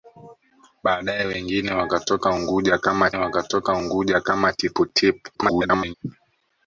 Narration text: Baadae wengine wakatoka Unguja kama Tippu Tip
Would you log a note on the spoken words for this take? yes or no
yes